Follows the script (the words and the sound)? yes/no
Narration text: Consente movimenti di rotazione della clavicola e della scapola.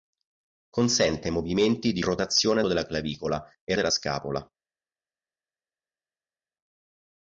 yes